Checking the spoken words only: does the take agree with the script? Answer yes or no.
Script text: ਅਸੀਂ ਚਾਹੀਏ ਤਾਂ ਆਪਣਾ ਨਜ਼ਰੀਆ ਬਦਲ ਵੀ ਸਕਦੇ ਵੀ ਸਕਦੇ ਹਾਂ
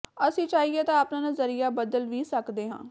no